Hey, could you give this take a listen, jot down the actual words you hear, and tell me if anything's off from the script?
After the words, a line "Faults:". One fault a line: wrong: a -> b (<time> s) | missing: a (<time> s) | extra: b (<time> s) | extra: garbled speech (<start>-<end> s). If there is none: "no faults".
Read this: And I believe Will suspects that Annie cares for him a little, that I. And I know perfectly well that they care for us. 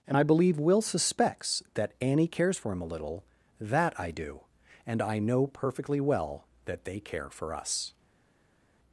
And I believe Will suspects that Annie cares for him a little, that I do. And I know perfectly well that they care for us.
Faults:
extra: do (4.1 s)